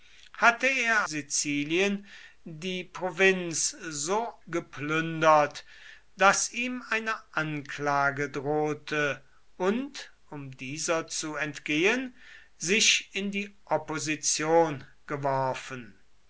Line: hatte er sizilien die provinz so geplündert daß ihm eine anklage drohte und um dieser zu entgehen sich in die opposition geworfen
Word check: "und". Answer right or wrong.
right